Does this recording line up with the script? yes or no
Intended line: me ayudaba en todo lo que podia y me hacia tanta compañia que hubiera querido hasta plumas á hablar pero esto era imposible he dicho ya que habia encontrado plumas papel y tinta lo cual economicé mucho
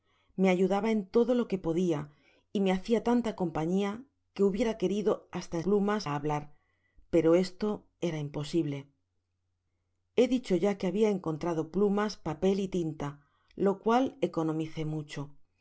yes